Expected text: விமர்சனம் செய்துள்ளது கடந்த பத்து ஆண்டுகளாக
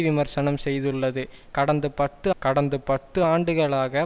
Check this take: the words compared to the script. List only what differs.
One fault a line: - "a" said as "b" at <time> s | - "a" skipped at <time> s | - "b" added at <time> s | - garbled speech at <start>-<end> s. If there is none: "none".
- "கடந்த பத்து" added at 2.4 s